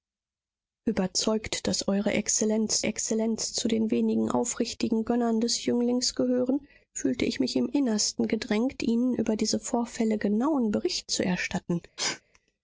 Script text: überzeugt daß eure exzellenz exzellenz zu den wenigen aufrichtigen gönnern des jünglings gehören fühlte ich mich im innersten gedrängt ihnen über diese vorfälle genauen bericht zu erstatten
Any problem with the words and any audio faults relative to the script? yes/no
yes